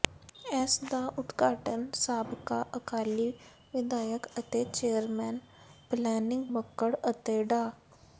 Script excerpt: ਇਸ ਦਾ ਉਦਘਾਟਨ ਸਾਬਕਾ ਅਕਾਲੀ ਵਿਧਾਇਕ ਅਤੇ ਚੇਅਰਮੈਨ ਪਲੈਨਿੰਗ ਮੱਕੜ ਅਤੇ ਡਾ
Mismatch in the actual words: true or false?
false